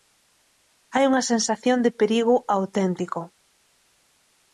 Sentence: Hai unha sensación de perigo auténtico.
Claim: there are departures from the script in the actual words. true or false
false